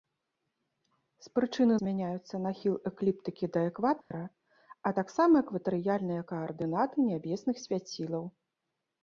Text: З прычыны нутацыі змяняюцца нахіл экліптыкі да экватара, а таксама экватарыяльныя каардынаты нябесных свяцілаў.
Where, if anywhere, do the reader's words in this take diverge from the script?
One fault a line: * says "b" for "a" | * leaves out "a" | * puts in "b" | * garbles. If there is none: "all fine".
* leaves out "нутацыі"